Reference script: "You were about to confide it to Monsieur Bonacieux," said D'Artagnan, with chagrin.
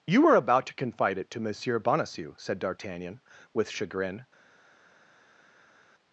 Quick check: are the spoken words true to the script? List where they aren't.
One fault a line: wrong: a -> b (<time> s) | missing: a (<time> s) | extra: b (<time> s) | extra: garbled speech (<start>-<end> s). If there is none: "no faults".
no faults